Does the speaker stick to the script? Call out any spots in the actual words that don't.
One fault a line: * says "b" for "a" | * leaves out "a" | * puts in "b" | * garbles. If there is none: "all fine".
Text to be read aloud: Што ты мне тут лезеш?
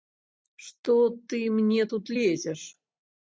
all fine